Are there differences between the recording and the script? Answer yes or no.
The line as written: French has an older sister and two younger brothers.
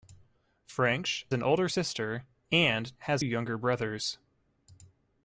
yes